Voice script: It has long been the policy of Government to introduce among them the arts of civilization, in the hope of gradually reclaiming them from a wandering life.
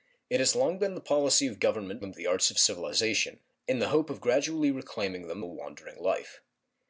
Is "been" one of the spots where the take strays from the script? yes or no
no